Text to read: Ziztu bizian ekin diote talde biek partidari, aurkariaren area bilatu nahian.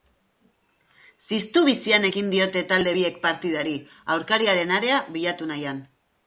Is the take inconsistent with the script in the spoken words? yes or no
no